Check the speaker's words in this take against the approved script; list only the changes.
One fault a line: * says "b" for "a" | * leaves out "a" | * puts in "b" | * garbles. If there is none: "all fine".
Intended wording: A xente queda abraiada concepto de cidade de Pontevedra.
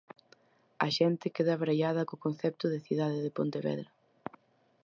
* puts in "co"